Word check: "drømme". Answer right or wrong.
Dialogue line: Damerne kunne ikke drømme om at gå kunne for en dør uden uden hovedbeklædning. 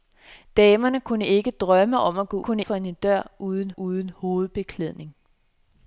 right